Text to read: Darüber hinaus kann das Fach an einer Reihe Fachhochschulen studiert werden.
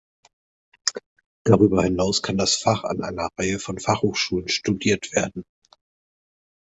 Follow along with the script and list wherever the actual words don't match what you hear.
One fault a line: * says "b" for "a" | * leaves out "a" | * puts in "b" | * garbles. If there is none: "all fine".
* puts in "von"